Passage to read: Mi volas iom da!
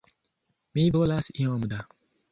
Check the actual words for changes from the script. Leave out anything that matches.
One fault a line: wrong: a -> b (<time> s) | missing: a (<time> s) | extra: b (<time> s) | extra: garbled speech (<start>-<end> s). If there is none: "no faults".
no faults